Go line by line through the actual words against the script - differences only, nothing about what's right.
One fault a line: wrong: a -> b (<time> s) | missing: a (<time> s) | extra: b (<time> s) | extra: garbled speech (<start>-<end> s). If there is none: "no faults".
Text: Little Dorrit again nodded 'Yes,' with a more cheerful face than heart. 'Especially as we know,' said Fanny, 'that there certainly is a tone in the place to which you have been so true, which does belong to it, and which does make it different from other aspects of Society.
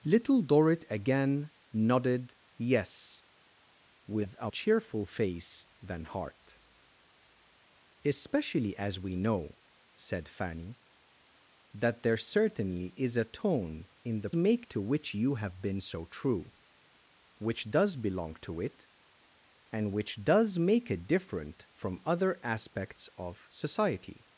missing: more (4.5 s)
wrong: place -> make (14.4 s)